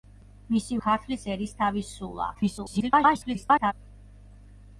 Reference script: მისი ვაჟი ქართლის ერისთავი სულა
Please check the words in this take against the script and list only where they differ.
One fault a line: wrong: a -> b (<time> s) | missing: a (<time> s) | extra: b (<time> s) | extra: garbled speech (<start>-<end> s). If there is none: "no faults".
missing: ვაჟი (0.8 s)
extra: garbled speech (2.3-3.7 s)